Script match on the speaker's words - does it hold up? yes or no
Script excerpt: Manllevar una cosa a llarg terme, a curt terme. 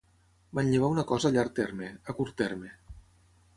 yes